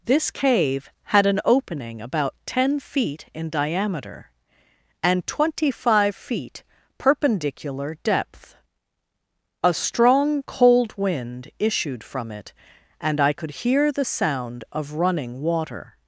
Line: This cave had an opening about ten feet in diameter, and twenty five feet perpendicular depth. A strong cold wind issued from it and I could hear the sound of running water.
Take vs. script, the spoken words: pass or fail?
pass